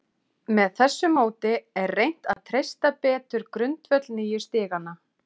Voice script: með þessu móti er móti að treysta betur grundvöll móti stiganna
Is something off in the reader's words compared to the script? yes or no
yes